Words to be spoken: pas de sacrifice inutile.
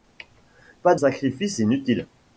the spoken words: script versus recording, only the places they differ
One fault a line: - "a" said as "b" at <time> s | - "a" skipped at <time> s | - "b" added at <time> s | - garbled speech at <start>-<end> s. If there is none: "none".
- "de" skipped at 0.9 s